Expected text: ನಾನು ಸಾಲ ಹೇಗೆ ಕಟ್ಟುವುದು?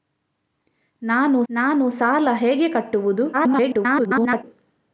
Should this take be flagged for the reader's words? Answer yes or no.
yes